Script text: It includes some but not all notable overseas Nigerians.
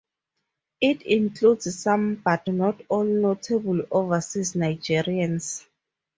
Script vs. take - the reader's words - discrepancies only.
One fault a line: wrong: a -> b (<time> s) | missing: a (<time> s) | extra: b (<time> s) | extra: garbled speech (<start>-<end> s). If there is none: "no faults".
no faults